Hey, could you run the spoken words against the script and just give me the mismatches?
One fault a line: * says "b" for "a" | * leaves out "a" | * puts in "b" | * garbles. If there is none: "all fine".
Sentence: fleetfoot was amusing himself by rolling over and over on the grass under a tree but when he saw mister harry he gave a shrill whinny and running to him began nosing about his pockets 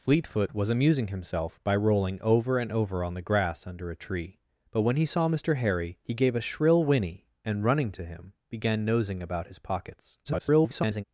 * garbles